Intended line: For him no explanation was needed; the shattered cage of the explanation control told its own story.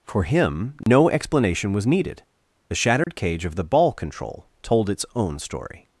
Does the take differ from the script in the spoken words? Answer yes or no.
yes